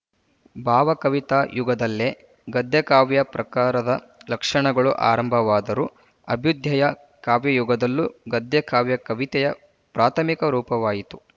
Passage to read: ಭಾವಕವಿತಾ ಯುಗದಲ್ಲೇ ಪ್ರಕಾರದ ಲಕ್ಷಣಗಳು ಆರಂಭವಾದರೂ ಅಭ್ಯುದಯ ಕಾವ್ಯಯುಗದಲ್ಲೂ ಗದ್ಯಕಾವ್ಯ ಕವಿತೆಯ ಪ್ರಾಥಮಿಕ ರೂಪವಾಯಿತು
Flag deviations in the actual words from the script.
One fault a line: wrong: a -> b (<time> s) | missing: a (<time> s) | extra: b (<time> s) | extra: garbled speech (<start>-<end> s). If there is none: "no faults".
extra: ಗದ್ಯಕಾವ್ಯ (2.5 s)